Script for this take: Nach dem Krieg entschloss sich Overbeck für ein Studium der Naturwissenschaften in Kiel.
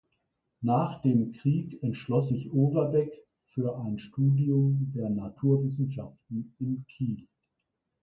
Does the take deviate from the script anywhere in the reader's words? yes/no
no